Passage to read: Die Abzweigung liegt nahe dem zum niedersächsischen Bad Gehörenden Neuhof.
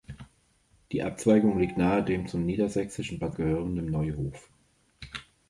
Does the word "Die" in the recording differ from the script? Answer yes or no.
no